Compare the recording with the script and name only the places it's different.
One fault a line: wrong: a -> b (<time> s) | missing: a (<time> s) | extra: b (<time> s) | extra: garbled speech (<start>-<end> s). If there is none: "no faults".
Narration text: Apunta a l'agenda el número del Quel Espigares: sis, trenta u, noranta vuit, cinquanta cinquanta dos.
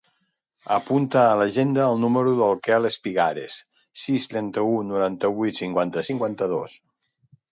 no faults